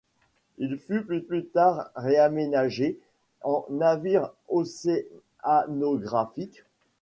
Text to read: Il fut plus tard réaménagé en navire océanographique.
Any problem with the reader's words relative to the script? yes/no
yes